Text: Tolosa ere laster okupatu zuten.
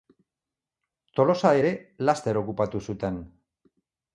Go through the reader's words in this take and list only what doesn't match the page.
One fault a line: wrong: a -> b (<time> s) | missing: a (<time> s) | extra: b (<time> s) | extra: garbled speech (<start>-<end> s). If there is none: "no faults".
no faults